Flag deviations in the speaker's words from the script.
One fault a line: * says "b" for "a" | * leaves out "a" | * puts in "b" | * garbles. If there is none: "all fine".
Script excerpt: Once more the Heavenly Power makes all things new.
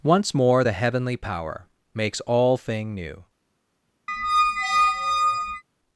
* says "thing" for "things"